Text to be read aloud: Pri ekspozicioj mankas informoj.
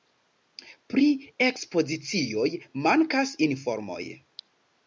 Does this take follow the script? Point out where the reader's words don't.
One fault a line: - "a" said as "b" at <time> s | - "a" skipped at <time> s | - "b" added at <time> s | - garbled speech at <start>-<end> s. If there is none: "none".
none